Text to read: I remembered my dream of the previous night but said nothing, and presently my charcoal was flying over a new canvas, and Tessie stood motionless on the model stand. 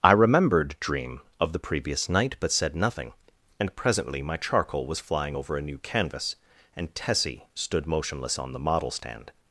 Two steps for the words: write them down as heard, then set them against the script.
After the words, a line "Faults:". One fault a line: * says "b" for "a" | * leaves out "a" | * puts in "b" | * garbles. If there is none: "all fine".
I remembered dream of the previous night but said nothing, and presently my charcoal was flying over a new canvas, and Tessie stood motionless on the model stand.
Faults:
* leaves out "my"